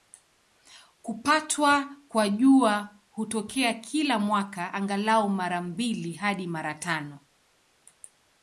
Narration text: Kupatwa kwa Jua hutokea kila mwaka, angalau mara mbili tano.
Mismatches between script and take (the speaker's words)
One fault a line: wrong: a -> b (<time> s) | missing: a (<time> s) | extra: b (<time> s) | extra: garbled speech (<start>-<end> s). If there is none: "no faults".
extra: hadi mara (6.1 s)